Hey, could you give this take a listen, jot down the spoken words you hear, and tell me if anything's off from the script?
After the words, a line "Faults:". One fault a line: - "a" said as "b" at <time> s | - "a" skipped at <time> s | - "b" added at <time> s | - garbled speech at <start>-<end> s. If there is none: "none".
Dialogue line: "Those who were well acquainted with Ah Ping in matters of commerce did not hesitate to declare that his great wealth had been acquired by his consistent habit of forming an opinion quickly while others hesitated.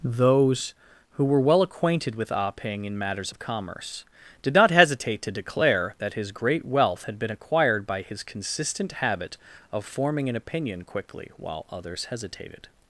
"Those who were well acquainted with Ah Ping in matters of commerce did not hesitate to declare that his great wealth had been acquired by his consistent habit of forming an opinion quickly while others hesitated.
Faults:
none